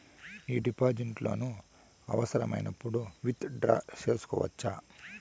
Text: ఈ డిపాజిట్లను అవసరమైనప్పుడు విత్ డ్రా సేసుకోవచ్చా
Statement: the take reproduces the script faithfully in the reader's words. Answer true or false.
true